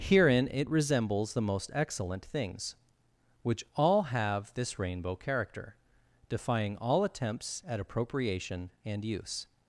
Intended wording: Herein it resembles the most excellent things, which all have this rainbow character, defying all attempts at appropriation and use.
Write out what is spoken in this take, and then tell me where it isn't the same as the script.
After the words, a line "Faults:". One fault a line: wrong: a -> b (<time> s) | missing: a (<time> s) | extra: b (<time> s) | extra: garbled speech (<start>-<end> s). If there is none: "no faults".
Herein it resembles the most excellent things, which all have this rainbow character, defying all attempts at appropriation and use.
Faults:
no faults